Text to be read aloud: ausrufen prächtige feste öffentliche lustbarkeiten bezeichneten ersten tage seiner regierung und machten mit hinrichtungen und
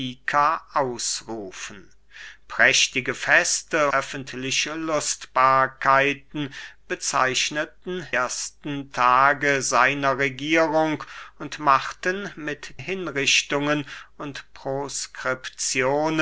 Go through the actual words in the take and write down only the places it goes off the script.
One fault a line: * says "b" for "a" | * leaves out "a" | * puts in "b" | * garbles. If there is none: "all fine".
all fine